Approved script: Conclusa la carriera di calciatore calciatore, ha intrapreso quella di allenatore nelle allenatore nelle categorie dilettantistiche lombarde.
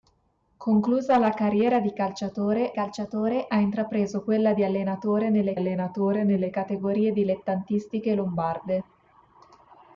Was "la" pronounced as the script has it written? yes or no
yes